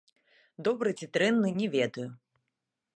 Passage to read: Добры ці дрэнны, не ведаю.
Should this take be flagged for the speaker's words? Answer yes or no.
no